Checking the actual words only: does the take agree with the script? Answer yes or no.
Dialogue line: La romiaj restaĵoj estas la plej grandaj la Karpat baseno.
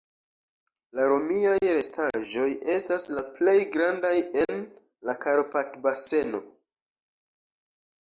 no